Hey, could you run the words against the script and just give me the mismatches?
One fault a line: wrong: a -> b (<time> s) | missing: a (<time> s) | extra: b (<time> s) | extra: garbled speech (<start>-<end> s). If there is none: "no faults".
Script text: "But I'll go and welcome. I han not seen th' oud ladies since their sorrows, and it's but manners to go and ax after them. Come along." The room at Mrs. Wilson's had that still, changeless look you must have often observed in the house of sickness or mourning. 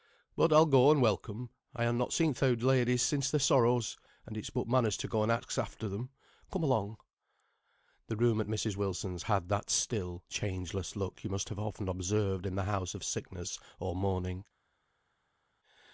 no faults